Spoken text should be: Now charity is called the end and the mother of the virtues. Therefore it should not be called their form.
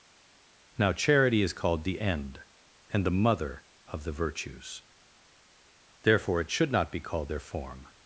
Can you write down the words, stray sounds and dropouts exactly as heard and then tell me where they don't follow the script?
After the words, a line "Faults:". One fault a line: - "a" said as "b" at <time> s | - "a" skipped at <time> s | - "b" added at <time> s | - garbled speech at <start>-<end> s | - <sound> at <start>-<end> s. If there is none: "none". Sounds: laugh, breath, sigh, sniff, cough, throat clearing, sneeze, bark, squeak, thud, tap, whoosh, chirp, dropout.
Now charity is called the end and the mother of the virtues. Therefore it should not be called their form.
Faults:
none